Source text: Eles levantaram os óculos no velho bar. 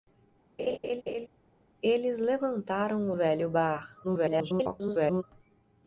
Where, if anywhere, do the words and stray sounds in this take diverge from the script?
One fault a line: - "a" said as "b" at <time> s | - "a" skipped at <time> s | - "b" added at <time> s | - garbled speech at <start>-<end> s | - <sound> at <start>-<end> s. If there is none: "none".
- laugh at 0.6-1.3 s
- "os óculos no" skipped at 3.1 s
- garbled speech at 4.0-5.2 s